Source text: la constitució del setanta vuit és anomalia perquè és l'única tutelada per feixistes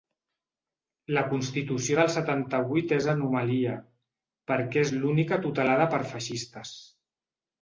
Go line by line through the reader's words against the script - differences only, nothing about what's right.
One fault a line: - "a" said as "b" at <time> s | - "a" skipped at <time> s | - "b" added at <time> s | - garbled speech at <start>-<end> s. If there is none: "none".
none